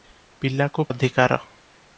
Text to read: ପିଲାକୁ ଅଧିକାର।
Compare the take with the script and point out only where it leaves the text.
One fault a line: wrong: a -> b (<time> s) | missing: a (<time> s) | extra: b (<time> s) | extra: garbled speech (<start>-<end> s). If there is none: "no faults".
no faults